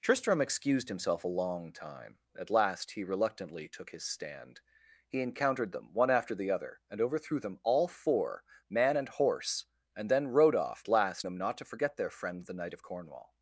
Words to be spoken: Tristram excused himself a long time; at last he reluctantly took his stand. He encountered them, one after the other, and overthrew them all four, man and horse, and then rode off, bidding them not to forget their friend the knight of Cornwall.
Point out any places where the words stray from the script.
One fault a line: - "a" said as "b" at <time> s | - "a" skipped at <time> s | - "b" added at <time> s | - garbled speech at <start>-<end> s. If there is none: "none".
- "bidding" said as "last" at 10.9 s